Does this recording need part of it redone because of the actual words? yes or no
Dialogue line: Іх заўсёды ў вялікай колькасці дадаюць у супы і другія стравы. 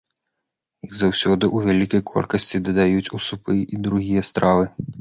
no